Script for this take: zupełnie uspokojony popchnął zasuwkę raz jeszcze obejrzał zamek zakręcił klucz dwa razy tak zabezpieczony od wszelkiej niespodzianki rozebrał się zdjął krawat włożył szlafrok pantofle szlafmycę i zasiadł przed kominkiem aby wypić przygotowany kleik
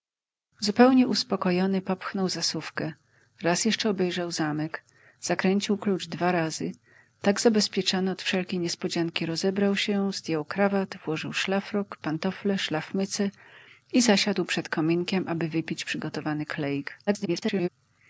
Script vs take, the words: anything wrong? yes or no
yes